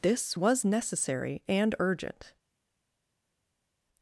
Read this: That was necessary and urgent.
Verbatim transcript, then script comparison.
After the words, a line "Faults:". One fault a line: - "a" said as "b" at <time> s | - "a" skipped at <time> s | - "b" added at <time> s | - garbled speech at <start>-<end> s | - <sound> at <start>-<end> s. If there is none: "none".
This was necessary and urgent.
Faults:
- "That" said as "This" at 0.0 s